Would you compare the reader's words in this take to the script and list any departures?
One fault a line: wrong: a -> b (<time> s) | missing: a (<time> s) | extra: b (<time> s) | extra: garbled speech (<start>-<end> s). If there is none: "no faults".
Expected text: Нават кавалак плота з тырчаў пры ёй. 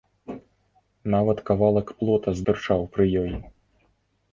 no faults